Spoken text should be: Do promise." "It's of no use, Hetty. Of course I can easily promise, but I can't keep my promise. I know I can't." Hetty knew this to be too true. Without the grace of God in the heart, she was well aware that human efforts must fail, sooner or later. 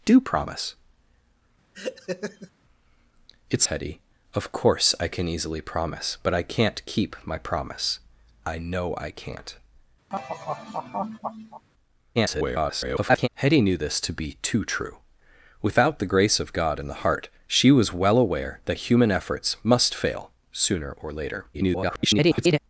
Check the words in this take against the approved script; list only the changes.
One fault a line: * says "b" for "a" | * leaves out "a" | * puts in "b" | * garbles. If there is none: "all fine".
* leaves out "of no use"
* garbles
* garbles